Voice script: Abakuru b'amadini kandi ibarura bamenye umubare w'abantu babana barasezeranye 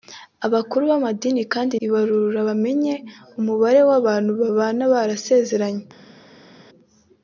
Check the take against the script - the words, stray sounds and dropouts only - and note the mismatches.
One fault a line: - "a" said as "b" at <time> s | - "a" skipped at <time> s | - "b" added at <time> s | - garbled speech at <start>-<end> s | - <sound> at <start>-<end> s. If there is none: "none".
none